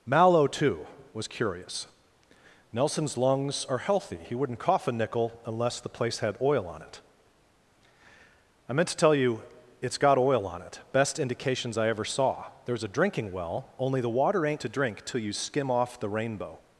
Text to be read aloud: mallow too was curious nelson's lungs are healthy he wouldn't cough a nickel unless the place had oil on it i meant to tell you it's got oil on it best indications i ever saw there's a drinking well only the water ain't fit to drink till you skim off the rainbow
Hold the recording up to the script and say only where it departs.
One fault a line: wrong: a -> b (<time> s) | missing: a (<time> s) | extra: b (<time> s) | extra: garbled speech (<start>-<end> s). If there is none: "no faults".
missing: fit (14.6 s)